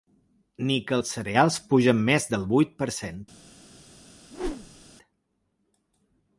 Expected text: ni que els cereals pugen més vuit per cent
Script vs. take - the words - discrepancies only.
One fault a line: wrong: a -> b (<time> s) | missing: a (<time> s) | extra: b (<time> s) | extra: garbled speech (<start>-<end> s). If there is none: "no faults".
extra: del (2.3 s)